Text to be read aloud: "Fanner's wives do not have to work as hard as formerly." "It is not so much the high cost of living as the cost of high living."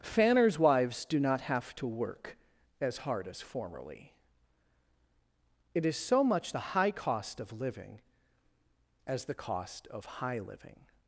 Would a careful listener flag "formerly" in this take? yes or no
no